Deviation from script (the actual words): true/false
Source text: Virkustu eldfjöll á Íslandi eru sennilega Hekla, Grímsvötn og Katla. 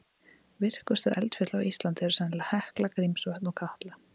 false